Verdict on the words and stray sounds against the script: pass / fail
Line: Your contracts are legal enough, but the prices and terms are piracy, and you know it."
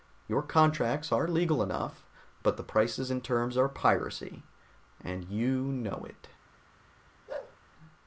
fail